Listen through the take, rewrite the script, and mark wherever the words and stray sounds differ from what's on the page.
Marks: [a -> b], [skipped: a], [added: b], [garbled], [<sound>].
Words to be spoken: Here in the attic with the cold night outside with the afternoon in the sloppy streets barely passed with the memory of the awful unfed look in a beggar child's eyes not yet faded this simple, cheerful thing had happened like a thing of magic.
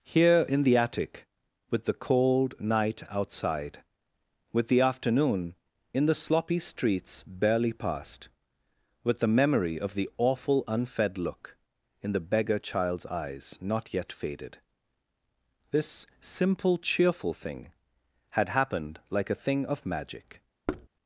Here in the attic with the cold night outside with the afternoon in the sloppy streets barely passed with the memory of the awful unfed look in [a -> the] beggar child's eyes not yet faded this simple, cheerful thing had happened like a thing of magic. [thud]